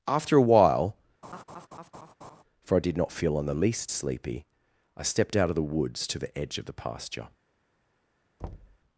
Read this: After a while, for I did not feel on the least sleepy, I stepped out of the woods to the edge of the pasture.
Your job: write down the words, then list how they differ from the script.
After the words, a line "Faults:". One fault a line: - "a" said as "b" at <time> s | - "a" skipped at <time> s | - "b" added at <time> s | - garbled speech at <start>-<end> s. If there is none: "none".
After a while, for I did not feel on the least sleepy, I stepped out of the woods to the edge of the pasture.
Faults:
none